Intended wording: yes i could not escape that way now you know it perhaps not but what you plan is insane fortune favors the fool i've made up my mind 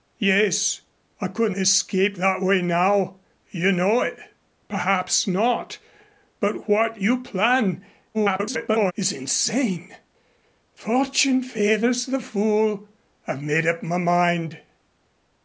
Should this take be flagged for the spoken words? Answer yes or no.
yes